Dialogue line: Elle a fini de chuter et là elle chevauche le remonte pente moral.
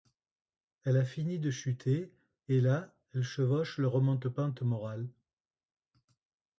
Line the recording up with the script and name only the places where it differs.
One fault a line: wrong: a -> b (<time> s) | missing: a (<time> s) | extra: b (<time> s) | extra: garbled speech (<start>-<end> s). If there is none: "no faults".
no faults